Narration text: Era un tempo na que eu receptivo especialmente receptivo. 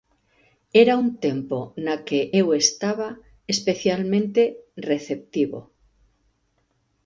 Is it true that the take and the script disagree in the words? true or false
true